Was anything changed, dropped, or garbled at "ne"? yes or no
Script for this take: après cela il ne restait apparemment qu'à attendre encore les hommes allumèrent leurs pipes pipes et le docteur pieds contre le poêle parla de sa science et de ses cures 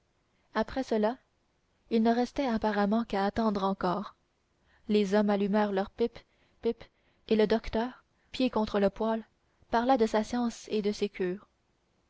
no